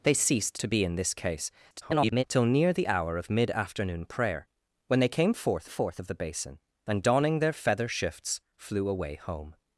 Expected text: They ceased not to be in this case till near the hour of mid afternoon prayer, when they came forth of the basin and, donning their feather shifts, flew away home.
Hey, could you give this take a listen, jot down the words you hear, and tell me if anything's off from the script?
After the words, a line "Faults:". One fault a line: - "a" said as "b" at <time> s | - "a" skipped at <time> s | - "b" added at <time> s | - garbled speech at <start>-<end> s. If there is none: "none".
They ceased to be in this case [garbled] till near the hour of mid afternoon prayer, when they came forth forth of the basin and, donning their feather shifts, flew away home.
Faults:
- "not" skipped at 0.6 s
- garbled speech at 1.7-2.2 s
- "forth" added at 5.7 s